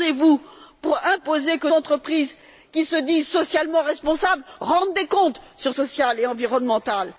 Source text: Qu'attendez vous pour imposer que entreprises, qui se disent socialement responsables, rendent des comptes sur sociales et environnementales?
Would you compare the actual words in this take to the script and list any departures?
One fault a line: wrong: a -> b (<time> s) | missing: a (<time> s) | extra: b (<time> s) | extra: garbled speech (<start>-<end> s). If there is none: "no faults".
no faults